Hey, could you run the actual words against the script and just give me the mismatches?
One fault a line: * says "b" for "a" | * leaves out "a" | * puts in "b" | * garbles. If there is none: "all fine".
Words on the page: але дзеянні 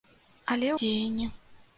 all fine